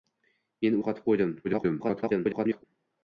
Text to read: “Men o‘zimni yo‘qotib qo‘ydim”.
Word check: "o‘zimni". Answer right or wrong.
wrong